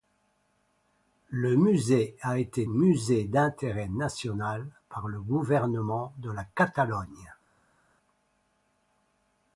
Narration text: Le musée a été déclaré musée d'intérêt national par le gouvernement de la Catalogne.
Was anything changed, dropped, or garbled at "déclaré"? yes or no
yes